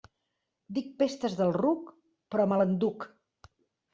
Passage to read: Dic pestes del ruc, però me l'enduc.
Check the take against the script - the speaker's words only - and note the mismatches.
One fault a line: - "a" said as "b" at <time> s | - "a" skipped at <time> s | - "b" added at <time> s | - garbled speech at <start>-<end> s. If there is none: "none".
none